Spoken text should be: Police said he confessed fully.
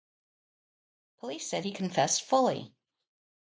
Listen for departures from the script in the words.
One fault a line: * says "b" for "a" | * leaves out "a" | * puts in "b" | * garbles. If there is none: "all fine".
all fine